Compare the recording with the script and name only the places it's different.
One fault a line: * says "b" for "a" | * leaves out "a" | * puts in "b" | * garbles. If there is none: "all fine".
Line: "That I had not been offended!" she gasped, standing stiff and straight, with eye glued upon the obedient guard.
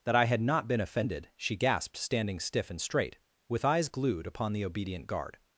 * says "eyes" for "eye"